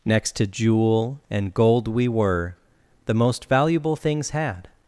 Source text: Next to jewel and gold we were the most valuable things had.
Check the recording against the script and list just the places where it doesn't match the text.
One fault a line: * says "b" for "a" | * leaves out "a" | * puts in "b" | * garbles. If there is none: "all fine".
all fine